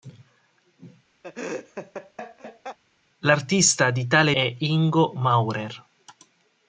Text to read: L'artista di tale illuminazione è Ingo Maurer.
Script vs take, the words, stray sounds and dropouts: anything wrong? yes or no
yes